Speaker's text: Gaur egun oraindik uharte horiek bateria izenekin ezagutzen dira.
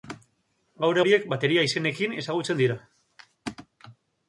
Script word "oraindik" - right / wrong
wrong